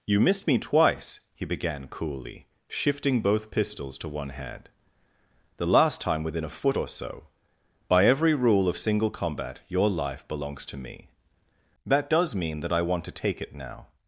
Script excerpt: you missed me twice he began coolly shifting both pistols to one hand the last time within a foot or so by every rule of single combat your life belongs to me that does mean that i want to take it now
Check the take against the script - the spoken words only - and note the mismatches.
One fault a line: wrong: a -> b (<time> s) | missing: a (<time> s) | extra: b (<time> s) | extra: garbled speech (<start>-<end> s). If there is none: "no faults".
no faults